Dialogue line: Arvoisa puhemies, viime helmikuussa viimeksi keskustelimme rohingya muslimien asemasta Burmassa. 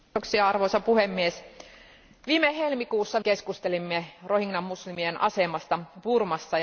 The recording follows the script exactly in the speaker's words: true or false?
false